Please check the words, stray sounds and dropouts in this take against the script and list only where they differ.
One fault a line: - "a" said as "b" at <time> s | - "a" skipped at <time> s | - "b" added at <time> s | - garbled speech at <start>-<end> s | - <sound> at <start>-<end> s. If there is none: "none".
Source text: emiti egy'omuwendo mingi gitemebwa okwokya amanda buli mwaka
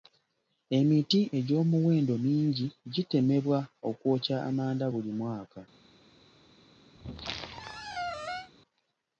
- squeak at 7.0-8.5 s